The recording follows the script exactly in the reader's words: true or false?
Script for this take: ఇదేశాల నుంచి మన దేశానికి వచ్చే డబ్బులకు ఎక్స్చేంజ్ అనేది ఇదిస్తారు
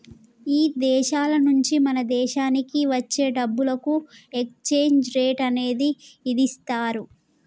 false